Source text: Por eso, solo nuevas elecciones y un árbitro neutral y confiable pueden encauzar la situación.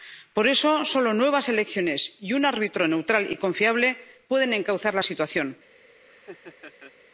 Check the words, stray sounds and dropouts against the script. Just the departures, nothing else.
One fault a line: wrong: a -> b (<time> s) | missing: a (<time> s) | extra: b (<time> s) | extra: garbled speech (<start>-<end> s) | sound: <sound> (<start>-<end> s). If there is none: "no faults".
sound: laugh (6.1-6.9 s)